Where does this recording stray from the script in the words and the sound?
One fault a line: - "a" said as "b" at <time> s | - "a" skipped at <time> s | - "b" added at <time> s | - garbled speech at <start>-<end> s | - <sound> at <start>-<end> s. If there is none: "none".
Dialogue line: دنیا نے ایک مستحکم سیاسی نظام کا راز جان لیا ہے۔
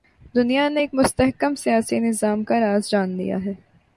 none